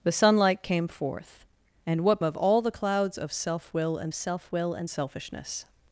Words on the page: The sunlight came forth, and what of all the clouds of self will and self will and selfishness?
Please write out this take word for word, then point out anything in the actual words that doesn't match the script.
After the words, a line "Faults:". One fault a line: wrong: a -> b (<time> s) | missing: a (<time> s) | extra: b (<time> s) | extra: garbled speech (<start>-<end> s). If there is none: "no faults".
The sunlight came forth, and what of all the clouds of self will and self will and selfishness?
Faults:
no faults